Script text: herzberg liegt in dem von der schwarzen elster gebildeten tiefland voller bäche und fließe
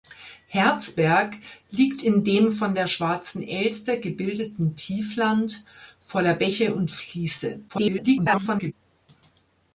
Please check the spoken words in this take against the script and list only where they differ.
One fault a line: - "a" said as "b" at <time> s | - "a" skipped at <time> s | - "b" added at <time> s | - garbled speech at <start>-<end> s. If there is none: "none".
- garbled speech at 7.7-8.7 s